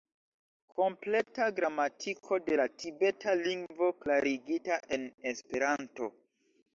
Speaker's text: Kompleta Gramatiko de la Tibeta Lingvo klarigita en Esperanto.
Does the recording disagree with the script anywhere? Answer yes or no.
no